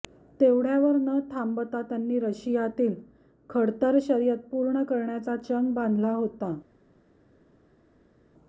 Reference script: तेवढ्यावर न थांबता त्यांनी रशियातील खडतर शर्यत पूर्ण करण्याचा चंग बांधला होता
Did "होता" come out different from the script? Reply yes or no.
no